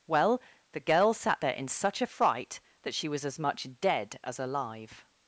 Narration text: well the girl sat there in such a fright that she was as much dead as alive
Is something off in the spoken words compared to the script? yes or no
no